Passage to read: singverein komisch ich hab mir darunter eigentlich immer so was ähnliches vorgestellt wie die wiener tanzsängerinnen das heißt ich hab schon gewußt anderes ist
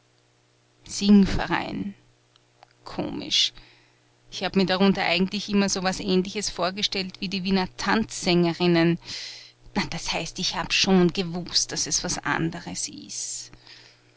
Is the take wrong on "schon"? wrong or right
right